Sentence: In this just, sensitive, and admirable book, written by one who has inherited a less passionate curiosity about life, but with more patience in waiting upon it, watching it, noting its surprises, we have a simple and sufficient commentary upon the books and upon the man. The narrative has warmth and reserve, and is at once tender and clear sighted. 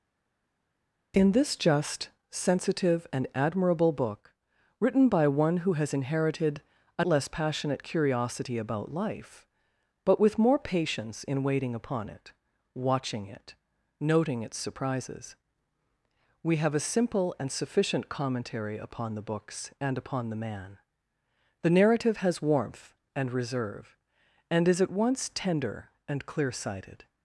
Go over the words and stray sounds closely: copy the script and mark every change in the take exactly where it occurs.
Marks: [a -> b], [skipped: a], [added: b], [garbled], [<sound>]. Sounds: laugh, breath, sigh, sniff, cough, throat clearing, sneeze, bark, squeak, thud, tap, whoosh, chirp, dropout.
In this just, sensitive, and admirable book, written by one who has inherited a less passionate curiosity about life, but with more patience in waiting upon it, watching it, noting its surprises, we have a simple and sufficient commentary upon the books and upon the man. The narrative has warmth and reserve, and is at once tender and clear sighted.